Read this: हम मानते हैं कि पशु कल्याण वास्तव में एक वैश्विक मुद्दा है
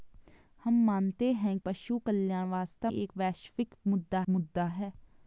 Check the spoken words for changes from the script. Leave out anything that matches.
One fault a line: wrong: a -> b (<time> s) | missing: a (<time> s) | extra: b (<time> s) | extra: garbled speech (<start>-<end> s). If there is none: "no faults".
missing: कि (1.6 s)
missing: में (2.9 s)
extra: मुद्दा (4.3 s)